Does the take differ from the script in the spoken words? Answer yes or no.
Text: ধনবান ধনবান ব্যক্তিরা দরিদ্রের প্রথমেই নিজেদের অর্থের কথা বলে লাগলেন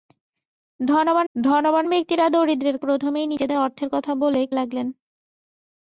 no